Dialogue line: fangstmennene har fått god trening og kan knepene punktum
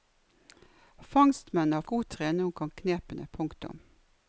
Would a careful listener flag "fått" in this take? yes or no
yes